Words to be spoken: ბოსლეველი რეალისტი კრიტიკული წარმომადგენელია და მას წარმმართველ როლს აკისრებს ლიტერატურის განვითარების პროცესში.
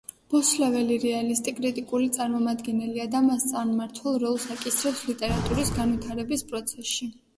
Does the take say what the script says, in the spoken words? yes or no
yes